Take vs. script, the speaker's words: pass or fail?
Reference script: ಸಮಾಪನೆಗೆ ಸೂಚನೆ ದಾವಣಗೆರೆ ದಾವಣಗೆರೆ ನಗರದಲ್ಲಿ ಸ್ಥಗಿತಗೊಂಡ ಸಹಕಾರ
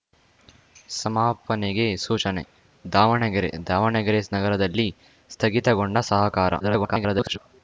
fail